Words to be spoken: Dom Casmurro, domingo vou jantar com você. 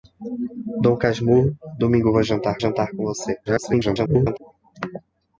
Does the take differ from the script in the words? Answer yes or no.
yes